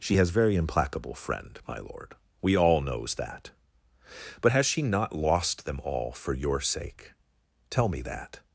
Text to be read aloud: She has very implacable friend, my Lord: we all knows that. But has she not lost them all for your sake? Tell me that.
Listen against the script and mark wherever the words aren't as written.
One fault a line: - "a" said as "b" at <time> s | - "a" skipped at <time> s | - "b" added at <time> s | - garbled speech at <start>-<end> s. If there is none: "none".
none